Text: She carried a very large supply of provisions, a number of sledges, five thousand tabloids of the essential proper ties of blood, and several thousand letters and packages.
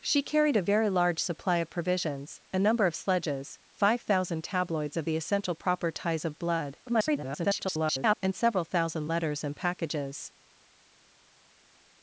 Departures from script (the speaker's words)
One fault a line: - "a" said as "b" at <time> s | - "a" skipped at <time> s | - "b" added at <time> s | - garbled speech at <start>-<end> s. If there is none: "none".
- garbled speech at 6.9-8.2 s